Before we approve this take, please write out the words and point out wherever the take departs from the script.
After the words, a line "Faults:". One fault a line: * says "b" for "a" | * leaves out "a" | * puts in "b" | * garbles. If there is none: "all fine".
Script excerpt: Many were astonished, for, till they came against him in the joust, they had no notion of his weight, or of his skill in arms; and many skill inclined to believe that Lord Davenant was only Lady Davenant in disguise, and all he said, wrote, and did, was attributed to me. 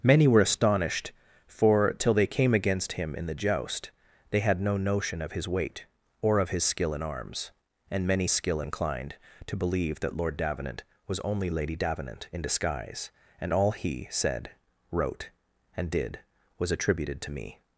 Many were astonished, for, till they came against him in the joust, they had no notion of his weight, or of his skill in arms; and many skill inclined to believe that Lord Davenant was only Lady Davenant in disguise, and all he said, wrote, and did, was attributed to me.
Faults:
all fine